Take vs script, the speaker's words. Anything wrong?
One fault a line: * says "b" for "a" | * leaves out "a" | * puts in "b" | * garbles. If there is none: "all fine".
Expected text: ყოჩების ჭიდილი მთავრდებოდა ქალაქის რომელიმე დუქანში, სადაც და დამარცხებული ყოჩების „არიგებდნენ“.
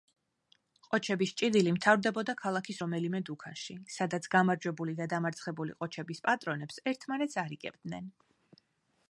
* puts in "გამარჯვებული"
* puts in "პატრონებს ერთმანეთს"